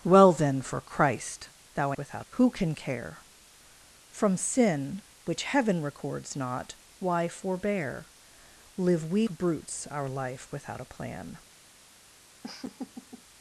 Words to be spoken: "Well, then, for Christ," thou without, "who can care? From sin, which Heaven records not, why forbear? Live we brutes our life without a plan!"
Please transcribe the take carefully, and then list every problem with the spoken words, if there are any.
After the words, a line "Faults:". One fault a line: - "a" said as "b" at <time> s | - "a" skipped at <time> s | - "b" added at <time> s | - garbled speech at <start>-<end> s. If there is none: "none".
"Well, then, for Christ," thou without, "who can care? From sin, which Heaven records not, why forbear? Live we brutes our life without a plan!"
Faults:
none